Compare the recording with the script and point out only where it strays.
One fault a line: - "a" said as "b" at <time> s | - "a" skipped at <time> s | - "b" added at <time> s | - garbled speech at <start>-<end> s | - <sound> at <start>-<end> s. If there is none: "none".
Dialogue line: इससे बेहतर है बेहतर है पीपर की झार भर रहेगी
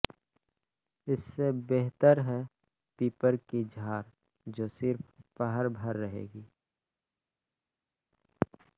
- "बेहतर है" skipped at 2.4 s
- "जो सिर्फ पहर" added at 4.5 s